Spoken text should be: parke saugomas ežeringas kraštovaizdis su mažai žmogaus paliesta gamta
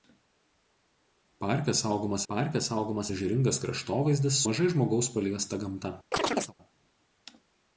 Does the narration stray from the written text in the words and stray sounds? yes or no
yes